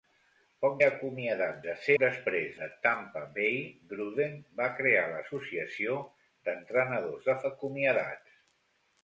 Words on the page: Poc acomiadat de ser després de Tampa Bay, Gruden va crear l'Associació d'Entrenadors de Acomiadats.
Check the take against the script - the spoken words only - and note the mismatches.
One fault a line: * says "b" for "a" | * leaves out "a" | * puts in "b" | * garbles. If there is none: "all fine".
all fine